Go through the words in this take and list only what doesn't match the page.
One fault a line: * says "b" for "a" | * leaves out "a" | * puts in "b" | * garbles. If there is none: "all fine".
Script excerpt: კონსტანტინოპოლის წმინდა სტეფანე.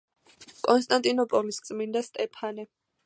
all fine